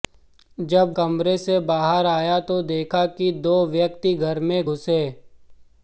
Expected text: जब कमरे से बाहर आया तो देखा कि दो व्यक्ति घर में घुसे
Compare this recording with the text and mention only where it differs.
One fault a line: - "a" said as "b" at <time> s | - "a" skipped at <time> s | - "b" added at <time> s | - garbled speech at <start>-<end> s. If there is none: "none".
none